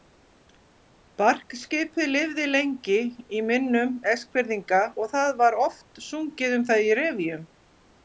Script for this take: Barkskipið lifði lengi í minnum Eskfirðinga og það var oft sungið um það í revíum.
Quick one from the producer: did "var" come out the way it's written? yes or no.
yes